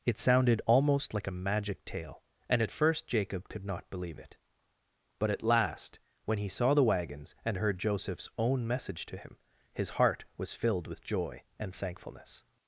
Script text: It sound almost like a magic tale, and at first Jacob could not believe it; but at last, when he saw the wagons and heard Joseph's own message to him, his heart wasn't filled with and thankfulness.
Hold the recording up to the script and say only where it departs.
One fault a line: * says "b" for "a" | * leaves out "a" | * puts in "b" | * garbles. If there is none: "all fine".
* says "sounded" for "sound"
* says "was" for "wasn't"
* puts in "joy"